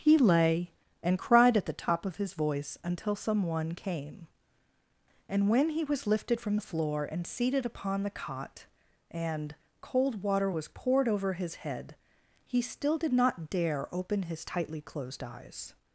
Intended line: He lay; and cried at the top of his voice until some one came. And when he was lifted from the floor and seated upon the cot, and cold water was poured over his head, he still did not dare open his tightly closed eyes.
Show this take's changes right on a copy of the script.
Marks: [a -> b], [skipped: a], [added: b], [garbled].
He lay; and cried at the top of his voice until some one came. And when he was lifted from the floor and seated upon the cot, and cold water was poured over his head, he still did not dare open his tightly closed eyes.